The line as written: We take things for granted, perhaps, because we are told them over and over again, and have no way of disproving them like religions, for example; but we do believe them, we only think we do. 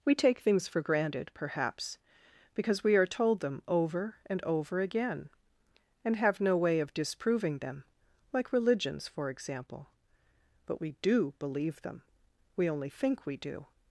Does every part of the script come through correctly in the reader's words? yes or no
yes